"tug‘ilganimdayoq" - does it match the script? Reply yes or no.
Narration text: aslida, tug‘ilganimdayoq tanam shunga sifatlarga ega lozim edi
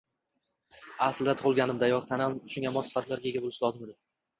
yes